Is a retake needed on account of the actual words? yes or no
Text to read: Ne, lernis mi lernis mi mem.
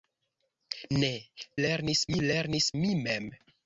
no